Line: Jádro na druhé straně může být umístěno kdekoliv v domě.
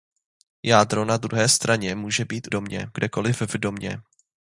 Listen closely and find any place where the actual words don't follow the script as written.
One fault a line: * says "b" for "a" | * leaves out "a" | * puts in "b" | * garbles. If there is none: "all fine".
* says "domě" for "umístěno"